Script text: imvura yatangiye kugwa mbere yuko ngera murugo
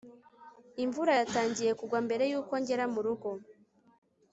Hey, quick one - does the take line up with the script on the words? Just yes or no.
yes